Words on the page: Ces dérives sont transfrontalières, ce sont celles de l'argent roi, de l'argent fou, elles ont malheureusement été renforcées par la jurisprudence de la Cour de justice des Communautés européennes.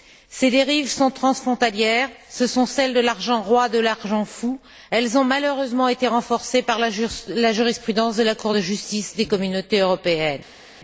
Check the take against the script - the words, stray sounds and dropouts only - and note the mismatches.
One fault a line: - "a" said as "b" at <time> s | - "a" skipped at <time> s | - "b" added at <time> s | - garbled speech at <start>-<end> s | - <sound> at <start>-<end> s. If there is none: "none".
none